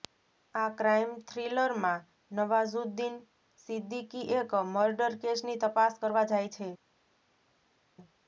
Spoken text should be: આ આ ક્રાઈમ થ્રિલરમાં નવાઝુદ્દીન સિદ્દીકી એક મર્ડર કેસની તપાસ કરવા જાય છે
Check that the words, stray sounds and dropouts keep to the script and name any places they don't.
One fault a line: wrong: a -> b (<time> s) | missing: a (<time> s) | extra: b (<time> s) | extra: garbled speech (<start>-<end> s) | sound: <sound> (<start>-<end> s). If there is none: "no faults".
missing: આ (0.7 s)